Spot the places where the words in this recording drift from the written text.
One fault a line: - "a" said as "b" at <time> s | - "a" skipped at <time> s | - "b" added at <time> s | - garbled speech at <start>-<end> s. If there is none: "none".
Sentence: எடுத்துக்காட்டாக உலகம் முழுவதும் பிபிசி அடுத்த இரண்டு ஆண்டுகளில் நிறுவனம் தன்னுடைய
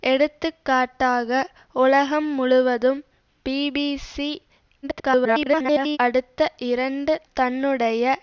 - garbled speech at 4.8-6.0 s
- "ஆண்டுகளில் நிறுவனம்" skipped at 7.1 s